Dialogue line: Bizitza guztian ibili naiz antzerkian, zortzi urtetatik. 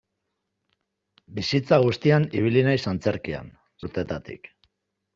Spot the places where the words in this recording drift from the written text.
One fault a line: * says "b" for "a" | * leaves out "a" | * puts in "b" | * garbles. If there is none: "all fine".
* leaves out "zortzi"